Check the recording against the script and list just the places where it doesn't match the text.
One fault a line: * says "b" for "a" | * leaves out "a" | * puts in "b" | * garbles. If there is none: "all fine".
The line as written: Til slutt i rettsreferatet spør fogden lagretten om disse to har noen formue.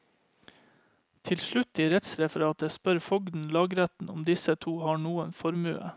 all fine